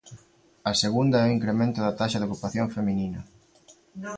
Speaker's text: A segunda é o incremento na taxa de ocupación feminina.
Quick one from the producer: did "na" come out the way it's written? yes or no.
no